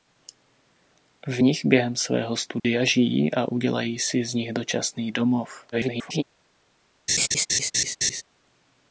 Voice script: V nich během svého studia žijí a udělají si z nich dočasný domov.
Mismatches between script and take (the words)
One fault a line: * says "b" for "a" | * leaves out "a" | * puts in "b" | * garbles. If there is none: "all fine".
* garbles